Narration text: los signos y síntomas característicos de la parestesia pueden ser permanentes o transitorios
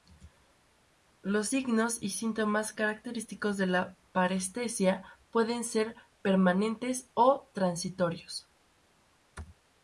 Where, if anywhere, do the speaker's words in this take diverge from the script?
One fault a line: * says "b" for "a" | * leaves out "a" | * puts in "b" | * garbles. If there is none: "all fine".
all fine